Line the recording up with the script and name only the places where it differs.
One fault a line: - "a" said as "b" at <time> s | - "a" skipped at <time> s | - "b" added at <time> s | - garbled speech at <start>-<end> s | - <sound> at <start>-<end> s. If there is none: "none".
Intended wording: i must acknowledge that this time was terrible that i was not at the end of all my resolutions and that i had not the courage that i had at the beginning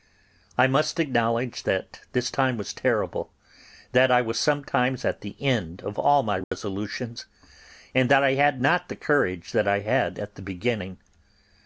- "not" said as "sometimes" at 4.4 s
- dropout at 6.4-6.5 s